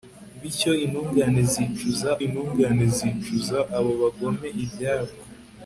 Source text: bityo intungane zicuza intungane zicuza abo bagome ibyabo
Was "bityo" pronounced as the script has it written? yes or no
yes